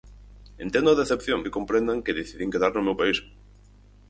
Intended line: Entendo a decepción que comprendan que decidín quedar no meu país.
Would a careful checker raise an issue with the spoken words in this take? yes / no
no